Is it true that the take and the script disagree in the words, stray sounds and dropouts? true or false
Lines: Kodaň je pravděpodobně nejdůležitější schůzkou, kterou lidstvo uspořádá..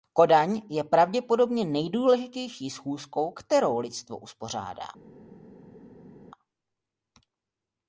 false